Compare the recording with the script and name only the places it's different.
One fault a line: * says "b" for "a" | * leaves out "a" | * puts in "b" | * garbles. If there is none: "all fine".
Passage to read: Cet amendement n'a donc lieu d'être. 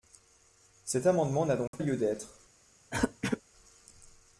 all fine